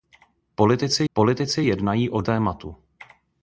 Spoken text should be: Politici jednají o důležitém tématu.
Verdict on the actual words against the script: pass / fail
fail